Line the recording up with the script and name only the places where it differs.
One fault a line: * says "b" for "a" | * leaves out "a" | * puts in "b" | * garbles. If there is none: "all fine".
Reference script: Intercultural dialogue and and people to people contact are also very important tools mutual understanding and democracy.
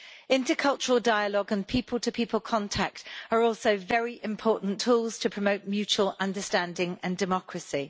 * leaves out "and"
* puts in "to promote"